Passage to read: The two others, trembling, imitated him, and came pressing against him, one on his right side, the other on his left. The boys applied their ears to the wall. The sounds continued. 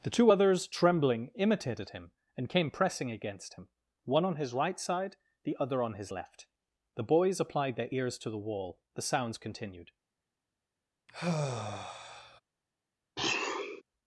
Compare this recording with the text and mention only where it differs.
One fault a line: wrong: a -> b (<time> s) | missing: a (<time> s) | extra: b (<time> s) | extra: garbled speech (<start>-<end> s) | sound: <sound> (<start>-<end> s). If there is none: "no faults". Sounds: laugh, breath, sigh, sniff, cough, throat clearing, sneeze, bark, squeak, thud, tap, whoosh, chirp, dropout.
sound: sigh (11.1-12.4 s)
sound: sniff (13.2-13.8 s)